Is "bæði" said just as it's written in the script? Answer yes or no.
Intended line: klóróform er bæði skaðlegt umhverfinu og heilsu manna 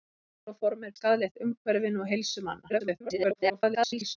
no